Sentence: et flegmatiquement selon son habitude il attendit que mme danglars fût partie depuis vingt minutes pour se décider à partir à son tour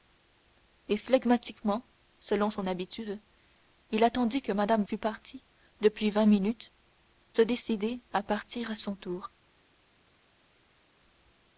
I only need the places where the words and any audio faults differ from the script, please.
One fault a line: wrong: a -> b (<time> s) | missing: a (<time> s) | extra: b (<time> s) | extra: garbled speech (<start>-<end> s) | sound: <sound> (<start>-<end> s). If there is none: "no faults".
missing: danglars (4.8 s)
missing: pour (6.7 s)